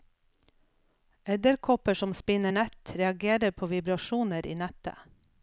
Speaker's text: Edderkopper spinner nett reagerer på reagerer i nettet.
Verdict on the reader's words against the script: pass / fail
fail